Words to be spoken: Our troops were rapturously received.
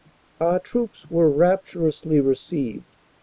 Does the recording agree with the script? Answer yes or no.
yes